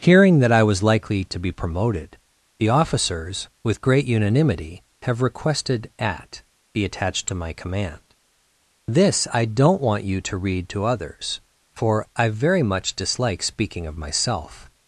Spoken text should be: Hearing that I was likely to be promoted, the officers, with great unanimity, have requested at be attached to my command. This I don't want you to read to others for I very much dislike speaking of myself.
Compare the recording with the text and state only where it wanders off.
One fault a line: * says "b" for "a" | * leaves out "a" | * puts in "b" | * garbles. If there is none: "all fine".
all fine